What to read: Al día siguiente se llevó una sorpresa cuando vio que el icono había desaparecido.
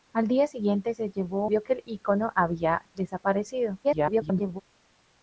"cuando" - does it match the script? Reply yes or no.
no